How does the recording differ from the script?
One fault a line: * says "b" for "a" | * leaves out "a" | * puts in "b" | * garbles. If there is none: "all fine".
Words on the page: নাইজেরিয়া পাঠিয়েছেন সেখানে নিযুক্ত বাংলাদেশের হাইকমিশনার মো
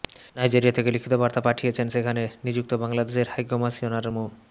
* puts in "থেকে লিখিত বার্তা"